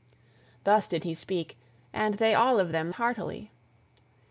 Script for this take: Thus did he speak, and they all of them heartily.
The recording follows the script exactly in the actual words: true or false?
true